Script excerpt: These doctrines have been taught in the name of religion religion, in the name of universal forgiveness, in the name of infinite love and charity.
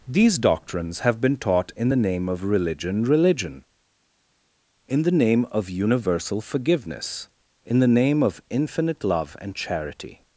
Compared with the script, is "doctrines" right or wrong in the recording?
right